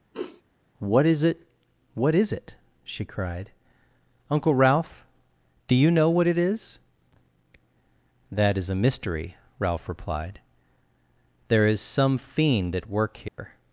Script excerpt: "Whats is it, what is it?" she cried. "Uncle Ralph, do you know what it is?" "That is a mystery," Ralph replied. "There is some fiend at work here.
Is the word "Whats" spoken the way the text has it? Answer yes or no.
no